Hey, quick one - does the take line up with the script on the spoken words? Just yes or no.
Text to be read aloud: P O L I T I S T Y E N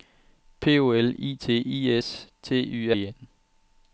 yes